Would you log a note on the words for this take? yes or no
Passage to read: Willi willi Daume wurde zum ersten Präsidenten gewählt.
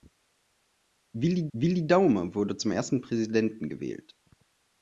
no